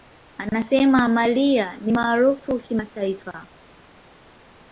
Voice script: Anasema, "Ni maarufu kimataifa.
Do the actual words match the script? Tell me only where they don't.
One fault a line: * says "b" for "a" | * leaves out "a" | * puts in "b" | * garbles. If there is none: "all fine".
* puts in "Mariah"